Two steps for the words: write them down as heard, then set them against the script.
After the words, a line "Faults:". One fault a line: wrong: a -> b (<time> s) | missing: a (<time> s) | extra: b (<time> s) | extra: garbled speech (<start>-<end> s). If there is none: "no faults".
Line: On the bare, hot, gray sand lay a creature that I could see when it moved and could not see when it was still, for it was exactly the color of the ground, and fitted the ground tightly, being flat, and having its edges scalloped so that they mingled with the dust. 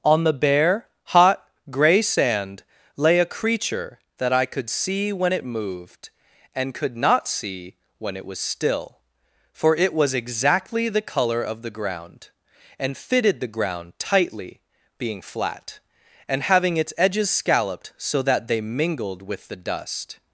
On the bare, hot, gray sand lay a creature that I could see when it moved and could not see when it was still, for it was exactly the color of the ground, and fitted the ground tightly, being flat, and having its edges scalloped so that they mingled with the dust.
Faults:
no faults